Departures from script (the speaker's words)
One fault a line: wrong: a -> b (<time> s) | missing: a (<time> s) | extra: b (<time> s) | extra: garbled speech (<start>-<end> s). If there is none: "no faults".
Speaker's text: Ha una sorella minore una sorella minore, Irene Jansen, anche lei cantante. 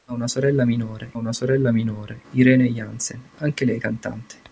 no faults